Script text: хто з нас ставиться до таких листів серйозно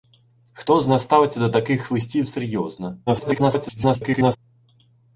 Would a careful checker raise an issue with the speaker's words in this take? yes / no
yes